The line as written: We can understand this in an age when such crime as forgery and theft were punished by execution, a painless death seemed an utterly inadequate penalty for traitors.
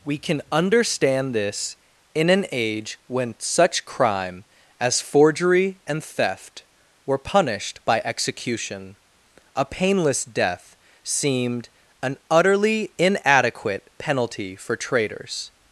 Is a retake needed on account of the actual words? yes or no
no